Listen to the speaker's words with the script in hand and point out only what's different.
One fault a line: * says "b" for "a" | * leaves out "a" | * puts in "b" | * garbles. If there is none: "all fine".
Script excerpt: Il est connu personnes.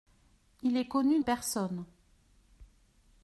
all fine